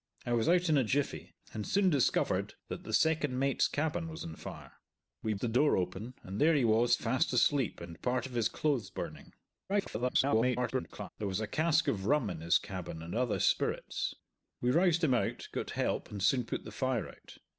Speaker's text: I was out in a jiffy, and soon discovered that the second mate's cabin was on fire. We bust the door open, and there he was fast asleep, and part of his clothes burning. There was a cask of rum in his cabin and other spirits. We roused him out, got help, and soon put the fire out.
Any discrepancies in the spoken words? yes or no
yes